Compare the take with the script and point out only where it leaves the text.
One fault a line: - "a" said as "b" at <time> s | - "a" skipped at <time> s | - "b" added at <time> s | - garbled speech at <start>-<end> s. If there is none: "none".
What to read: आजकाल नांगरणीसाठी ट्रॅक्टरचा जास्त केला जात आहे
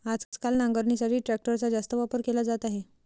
- "वापर" added at 1.9 s